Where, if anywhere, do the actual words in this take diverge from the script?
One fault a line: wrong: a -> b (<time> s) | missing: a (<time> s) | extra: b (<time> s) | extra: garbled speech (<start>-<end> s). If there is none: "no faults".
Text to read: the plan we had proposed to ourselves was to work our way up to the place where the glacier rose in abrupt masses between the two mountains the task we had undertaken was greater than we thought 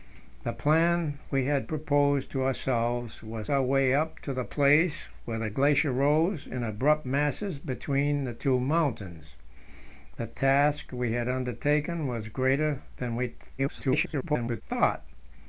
missing: to work (3.5 s)
extra: garbled speech (13.6-14.6 s)